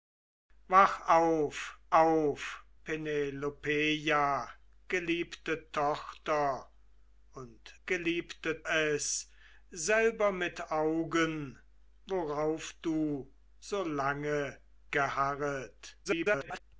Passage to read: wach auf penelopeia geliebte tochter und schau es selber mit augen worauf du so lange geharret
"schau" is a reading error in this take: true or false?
true